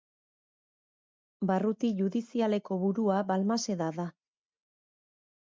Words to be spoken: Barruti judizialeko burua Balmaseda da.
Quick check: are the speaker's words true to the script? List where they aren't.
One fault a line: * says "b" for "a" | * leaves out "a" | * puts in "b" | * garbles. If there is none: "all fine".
all fine